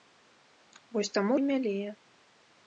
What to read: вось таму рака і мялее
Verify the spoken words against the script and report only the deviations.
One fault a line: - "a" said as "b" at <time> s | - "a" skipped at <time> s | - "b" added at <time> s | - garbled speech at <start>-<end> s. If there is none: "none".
- "рака" skipped at 1.3 s